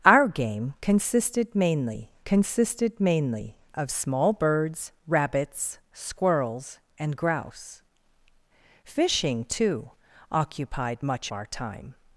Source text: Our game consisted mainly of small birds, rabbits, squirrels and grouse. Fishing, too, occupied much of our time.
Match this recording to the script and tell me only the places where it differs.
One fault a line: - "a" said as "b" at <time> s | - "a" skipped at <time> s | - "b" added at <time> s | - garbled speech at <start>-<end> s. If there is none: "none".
- "consisted mainly" added at 2.2 s
- "of" skipped at 11.3 s